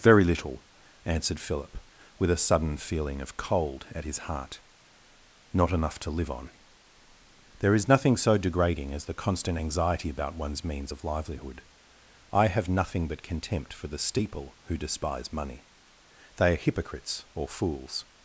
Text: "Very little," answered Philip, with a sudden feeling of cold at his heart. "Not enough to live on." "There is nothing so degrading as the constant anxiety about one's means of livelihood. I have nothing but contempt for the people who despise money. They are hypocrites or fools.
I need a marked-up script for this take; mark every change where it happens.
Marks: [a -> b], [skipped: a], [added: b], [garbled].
"Very little," answered Philip, with a sudden feeling of cold at his heart. "Not enough to live on." "There is nothing so degrading as the constant anxiety about one's means of livelihood. I have nothing but contempt for the [people -> steeple] who despise money. They are hypocrites or fools.